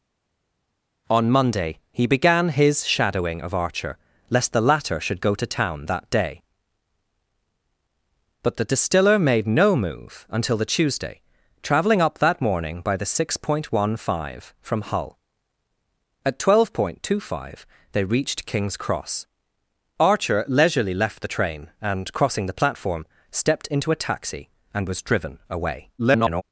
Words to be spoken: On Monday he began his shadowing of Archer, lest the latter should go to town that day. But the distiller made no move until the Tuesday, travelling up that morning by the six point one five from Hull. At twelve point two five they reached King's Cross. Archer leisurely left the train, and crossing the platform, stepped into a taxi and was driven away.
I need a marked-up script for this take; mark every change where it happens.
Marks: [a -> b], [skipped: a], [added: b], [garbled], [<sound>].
On Monday he began his shadowing of Archer, lest the latter should go to town that day. But the distiller made no move until the Tuesday, travelling up that morning by the six point one five from Hull. At twelve point two five they reached King's Cross. Archer leisurely left the train, and crossing the platform, stepped into a taxi and was driven away. [garbled]